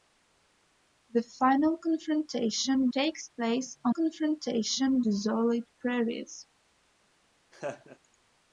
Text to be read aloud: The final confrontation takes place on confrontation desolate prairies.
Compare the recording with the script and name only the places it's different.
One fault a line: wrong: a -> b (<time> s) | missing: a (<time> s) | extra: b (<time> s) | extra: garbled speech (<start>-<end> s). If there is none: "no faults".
no faults